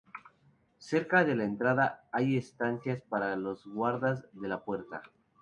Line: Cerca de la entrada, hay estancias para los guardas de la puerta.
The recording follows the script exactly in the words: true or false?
true